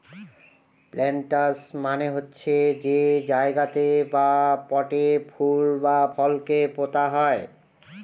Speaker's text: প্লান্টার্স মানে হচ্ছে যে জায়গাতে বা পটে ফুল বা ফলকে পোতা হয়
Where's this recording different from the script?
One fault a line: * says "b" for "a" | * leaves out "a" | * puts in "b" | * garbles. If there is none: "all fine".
all fine